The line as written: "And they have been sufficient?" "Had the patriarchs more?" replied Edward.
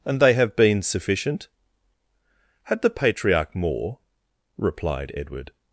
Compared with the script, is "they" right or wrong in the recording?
right